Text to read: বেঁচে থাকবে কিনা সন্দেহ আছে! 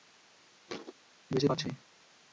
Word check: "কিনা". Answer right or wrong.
wrong